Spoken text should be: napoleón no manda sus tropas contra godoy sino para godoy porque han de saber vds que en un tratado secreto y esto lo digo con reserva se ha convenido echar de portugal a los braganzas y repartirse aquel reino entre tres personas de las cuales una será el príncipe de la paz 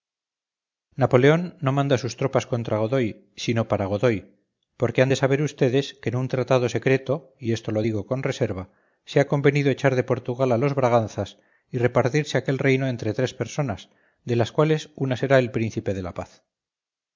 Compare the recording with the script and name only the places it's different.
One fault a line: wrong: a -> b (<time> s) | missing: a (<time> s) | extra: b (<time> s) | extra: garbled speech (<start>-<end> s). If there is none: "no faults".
no faults